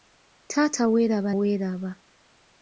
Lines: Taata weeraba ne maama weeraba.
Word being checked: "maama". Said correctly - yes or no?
no